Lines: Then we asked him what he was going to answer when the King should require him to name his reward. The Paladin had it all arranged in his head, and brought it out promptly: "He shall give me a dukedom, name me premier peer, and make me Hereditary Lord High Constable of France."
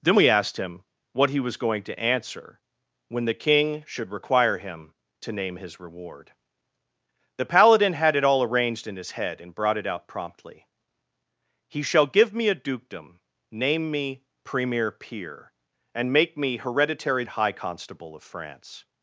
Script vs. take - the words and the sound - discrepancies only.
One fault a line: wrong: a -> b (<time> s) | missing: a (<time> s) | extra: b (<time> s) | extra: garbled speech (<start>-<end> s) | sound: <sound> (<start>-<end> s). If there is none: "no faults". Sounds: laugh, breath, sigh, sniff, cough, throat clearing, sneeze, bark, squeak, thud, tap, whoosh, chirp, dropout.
missing: Lord (17.2 s)